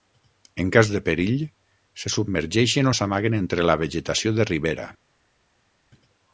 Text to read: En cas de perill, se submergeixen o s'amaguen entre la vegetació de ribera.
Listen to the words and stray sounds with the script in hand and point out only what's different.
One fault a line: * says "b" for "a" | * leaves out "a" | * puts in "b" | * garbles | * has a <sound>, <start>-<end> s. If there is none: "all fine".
all fine